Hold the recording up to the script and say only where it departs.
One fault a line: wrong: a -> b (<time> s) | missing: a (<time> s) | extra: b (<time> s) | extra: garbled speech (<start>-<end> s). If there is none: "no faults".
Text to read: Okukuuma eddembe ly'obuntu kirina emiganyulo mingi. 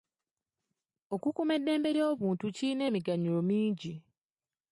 no faults